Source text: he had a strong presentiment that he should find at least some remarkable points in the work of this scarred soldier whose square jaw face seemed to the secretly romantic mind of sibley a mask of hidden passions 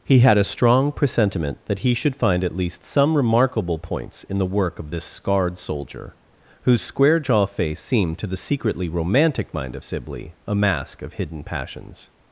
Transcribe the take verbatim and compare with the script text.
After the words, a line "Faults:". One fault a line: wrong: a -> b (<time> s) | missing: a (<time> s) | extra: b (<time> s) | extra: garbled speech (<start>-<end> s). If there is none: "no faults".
he had a strong presentiment that he should find at least some remarkable points in the work of this scarred soldier whose square jaw face seemed to the secretly romantic mind of sibley a mask of hidden passions
Faults:
no faults